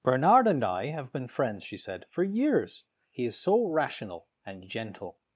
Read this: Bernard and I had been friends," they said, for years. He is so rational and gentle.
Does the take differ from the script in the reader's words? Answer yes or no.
yes